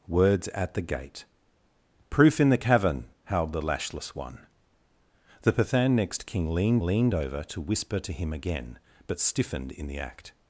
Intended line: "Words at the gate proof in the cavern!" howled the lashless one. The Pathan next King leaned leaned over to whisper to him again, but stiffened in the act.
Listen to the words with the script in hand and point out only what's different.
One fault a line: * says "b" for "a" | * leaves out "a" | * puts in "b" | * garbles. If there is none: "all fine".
all fine